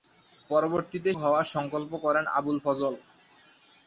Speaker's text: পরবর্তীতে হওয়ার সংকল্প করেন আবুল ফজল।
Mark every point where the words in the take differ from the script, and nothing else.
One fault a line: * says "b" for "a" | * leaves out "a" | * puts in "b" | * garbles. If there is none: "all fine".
all fine